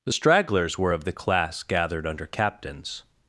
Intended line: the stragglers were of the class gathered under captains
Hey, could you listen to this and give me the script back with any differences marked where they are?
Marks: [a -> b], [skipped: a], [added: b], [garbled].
the stragglers were of the class gathered under captains